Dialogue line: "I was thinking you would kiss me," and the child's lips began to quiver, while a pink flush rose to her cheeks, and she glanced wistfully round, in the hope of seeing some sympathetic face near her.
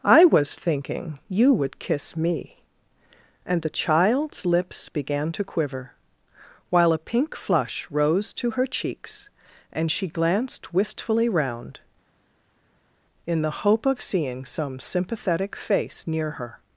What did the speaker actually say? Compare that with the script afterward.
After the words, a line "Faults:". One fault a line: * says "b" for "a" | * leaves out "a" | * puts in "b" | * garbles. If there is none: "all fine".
"I was thinking you would kiss me," and the child's lips began to quiver, while a pink flush rose to her cheeks, and she glanced wistfully round, in the hope of seeing some sympathetic face near her.
Faults:
all fine